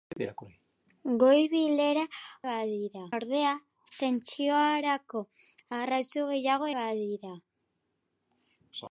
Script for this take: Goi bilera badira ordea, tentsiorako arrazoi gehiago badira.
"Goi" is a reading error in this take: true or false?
false